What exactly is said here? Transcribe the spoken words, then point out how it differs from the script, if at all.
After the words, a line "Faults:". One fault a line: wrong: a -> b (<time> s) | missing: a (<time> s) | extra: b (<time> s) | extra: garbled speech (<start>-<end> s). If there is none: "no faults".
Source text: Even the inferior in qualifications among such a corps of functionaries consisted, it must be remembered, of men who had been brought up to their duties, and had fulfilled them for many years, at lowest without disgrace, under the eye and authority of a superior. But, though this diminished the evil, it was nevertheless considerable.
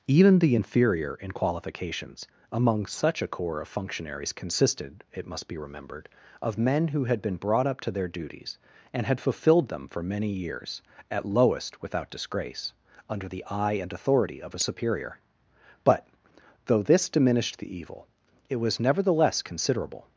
Even the inferior in qualifications among such a corps of functionaries consisted, it must be remembered, of men who had been brought up to their duties, and had fulfilled them for many years, at lowest without disgrace, under the eye and authority of a superior. But, though this diminished the evil, it was nevertheless considerable.
Faults:
no faults